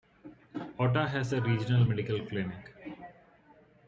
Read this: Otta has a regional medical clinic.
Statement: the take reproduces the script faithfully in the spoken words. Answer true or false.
true